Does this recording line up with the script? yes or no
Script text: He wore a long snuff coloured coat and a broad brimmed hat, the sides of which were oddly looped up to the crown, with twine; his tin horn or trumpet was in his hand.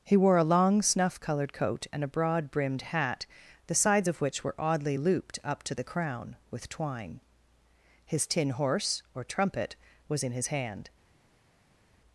no